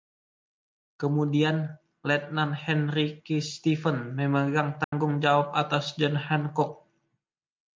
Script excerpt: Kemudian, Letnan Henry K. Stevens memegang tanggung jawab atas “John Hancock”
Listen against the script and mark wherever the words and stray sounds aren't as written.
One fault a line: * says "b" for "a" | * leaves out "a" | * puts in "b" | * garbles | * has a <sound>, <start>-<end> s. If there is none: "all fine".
* has a dropout, 4.8-4.9 s